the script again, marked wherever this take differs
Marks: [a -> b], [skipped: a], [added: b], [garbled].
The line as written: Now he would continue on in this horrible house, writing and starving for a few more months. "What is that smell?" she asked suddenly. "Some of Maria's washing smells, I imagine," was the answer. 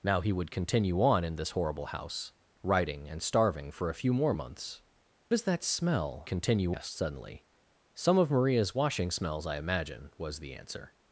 Now he would continue on in this horrible house, writing and starving for a few more months. [skipped: "What] is that smell?" [she -> continue] asked suddenly. "Some of Maria's washing smells, I imagine," was the answer.